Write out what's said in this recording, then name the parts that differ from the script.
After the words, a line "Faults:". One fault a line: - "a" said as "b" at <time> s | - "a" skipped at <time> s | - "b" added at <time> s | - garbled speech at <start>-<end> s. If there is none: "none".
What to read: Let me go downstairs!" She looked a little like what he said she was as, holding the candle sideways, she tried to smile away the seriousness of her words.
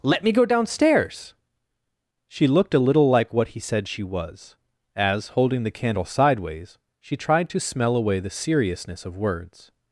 Let me go downstairs!" She looked a little like what he said she was as, holding the candle sideways, she tried to smell away the seriousness of words.
Faults:
- "smile" said as "smell" at 7.6 s
- "her" skipped at 9.2 s